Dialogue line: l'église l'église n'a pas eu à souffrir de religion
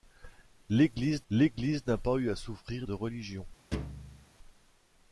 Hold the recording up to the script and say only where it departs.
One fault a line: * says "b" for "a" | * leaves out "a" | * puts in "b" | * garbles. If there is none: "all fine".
all fine